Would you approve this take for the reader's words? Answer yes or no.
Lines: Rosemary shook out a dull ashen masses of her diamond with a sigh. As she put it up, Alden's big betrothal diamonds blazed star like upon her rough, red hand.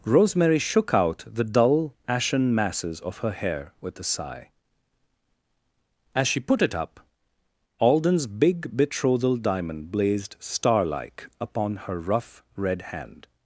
no